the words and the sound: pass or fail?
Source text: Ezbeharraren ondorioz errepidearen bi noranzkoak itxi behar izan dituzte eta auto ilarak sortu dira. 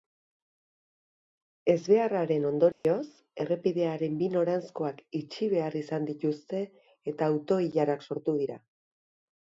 fail